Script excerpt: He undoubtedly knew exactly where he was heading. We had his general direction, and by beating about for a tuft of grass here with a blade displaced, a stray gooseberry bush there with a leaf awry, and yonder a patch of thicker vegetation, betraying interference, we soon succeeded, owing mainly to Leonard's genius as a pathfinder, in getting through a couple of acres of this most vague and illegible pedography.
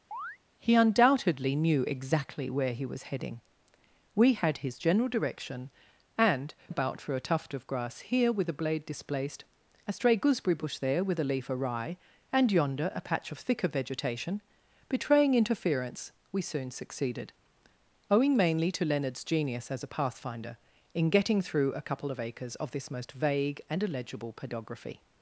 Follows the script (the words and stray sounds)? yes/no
no